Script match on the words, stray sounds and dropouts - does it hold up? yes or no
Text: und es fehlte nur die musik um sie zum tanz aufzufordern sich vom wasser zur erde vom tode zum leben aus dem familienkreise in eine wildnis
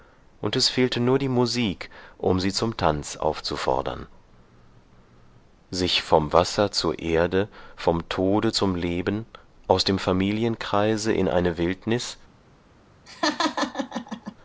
no